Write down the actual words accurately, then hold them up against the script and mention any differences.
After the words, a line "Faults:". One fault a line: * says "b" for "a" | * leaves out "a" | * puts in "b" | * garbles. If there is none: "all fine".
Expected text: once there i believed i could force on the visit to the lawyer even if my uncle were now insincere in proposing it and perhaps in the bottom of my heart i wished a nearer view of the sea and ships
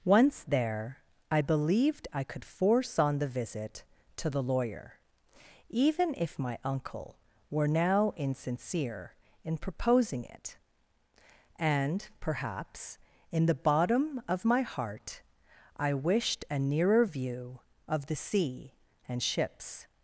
once there i believed i could force on the visit to the lawyer even if my uncle were now insincere in proposing it and perhaps in the bottom of my heart i wished a nearer view of the sea and ships
Faults:
all fine